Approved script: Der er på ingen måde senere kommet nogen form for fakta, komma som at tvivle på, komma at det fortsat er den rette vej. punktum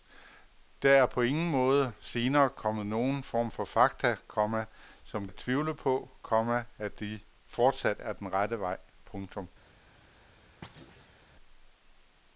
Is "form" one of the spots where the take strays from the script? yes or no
no